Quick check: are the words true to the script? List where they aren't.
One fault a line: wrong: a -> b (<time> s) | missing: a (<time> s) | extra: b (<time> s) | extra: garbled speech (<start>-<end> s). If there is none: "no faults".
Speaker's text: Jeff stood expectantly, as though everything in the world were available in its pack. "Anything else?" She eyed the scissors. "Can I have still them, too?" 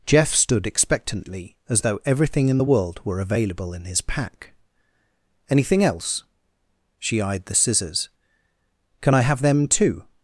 wrong: its -> his (3.8 s)
missing: still (9.4 s)